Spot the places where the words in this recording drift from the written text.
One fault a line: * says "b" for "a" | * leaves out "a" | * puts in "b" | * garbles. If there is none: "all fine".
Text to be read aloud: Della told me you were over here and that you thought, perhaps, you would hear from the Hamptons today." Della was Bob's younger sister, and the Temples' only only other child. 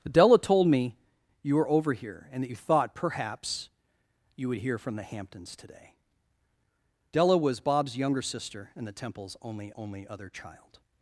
all fine